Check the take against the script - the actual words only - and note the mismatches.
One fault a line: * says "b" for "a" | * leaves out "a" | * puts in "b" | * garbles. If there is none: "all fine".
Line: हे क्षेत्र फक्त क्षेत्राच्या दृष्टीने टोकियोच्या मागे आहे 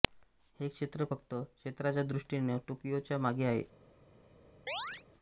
all fine